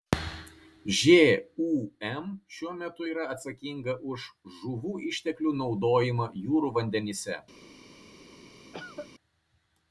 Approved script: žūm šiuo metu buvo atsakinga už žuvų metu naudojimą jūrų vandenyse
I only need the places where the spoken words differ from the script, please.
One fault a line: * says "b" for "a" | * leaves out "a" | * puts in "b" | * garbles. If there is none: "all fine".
* says "yra" for "buvo"
* says "išteklių" for "metu"